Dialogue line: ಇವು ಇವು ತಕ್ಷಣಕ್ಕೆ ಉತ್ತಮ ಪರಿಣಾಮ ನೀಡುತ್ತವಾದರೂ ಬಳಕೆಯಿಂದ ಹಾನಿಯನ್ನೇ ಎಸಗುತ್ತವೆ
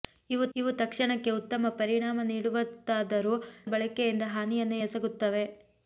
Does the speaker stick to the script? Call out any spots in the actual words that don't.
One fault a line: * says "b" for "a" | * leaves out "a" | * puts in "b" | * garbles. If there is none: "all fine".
all fine